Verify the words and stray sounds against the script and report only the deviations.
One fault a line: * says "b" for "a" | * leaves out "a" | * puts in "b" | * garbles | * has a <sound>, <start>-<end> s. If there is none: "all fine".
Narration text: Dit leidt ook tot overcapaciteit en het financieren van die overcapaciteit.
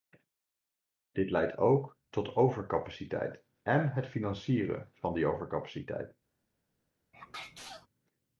* has a sneeze, 7.1-7.9 s